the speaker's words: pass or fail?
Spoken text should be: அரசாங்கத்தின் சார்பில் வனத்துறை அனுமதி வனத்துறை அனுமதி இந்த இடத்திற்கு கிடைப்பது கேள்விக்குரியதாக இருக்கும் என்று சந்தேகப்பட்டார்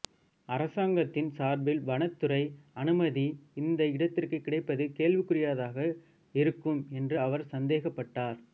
fail